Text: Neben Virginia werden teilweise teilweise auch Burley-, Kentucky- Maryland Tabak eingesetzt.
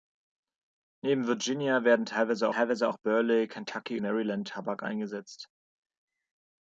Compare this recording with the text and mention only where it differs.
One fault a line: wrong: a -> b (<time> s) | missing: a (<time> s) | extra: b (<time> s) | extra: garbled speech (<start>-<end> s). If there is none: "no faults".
no faults